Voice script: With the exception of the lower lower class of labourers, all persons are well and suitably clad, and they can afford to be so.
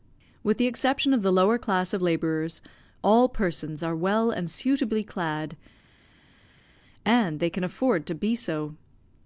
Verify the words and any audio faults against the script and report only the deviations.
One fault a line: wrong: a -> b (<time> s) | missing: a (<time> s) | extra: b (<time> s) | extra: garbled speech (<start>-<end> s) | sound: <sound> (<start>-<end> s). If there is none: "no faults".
missing: lower (1.6 s)